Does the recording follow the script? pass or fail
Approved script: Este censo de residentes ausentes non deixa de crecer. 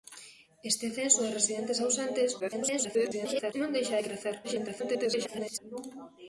fail